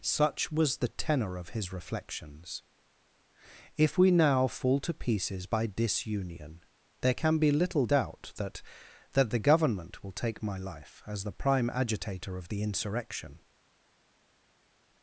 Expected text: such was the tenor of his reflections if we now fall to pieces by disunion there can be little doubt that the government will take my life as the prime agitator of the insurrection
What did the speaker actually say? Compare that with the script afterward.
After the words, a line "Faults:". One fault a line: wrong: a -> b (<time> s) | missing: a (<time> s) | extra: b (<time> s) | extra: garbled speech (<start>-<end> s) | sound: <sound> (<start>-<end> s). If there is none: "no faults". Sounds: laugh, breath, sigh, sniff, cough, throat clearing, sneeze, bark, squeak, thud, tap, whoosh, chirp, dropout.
such was the tenor of his reflections if we now fall to pieces by disunion there can be little doubt that that the government will take my life as the prime agitator of the insurrection
Faults:
extra: that (9.1 s)